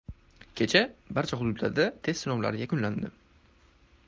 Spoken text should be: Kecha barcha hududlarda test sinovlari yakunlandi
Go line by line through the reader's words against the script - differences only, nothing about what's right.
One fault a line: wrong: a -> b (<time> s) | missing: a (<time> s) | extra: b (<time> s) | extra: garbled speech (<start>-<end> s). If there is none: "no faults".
no faults